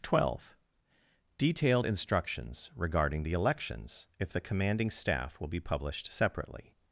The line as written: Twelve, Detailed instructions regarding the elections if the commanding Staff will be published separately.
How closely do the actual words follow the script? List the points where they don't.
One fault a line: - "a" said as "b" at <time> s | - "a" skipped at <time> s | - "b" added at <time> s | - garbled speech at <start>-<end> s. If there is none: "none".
none